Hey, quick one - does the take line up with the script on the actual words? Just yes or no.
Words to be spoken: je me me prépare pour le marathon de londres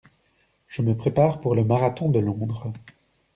no